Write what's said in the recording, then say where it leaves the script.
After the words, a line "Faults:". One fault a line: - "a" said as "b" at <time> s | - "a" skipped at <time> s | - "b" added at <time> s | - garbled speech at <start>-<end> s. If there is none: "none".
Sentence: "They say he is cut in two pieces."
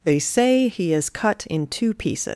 "They say he is cut in two pieces."
Faults:
none